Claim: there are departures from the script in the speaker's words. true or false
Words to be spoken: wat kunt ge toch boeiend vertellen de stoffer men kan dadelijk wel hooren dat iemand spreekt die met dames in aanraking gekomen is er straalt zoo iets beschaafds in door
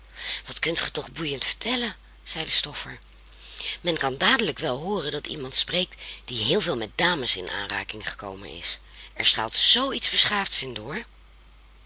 true